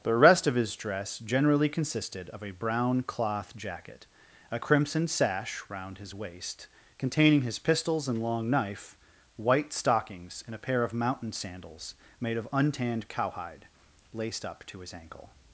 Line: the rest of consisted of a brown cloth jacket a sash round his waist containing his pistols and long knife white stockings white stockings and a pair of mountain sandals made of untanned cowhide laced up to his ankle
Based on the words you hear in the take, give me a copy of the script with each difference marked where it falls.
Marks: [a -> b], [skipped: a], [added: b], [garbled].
the rest of [added: his dress generally] consisted of a brown cloth jacket a [added: crimson] sash round his waist containing his pistols and long knife white stockings [skipped: white stockings] and a pair of mountain sandals made of untanned cowhide laced up to his ankle